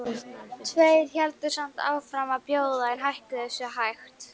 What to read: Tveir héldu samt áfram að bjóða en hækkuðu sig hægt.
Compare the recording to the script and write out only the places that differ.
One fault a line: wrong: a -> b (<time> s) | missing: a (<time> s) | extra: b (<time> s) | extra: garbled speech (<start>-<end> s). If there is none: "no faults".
no faults